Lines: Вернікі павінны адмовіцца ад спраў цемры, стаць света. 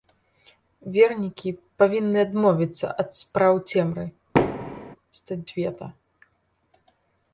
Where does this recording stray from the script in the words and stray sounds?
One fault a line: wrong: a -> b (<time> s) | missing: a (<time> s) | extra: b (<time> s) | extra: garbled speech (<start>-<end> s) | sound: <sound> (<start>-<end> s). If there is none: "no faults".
sound: thud (4.3-5.0 s)